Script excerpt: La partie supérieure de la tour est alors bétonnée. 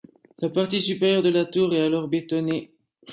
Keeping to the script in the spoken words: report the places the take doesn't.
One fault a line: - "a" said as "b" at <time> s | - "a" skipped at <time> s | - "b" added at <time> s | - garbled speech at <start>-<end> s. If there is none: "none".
none